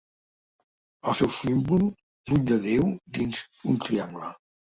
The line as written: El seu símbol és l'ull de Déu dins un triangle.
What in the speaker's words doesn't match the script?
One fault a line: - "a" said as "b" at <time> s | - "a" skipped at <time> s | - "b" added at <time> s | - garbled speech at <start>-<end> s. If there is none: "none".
- "és" skipped at 1.8 s